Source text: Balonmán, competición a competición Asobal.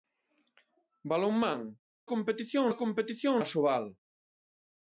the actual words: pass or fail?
pass